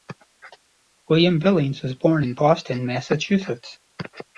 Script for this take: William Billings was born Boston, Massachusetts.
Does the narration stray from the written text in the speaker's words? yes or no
yes